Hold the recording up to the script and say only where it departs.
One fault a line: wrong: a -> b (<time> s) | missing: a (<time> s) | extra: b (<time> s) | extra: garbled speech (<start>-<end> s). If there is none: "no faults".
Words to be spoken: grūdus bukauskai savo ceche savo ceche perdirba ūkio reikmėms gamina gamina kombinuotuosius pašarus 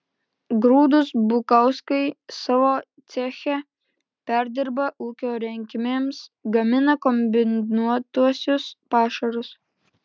missing: savo ceche (3.6 s)
missing: gamina (7.0 s)